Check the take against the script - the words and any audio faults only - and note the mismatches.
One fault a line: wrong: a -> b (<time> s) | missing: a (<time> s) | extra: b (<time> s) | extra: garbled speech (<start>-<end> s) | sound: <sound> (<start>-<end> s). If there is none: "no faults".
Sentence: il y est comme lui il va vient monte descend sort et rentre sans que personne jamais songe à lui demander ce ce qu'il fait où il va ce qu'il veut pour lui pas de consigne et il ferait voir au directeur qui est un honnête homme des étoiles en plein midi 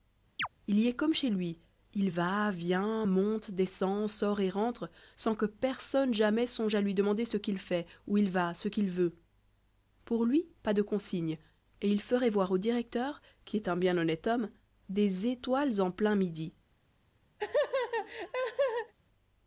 sound: chirp (0.4-0.5 s)
extra: chez (1.1 s)
missing: ce (7.4 s)
extra: bien (13.8 s)
sound: laugh (17.4-18.9 s)